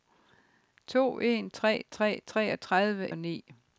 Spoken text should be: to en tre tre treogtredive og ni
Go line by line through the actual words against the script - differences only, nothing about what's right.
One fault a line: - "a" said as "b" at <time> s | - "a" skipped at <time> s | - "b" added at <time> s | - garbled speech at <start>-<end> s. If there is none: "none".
none